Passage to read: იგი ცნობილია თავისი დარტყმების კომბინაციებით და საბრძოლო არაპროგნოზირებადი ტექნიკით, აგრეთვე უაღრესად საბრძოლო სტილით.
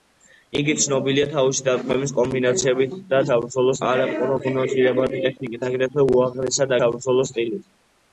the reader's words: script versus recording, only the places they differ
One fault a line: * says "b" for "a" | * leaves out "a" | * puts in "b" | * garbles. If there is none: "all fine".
all fine